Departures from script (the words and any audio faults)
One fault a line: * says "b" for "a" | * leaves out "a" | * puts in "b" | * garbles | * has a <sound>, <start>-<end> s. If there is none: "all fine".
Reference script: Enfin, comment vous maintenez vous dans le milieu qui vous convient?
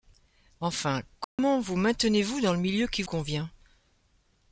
* has a dropout, 1.2-1.4 s
* leaves out "vous"